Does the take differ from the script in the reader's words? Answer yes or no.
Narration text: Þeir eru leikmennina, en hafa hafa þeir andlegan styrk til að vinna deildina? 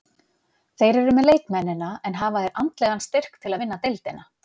yes